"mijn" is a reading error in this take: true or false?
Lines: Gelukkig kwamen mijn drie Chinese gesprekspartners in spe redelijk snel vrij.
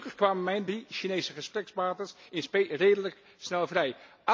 false